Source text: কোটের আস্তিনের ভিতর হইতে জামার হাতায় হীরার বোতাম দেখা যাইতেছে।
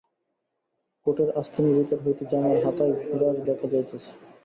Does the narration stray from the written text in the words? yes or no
yes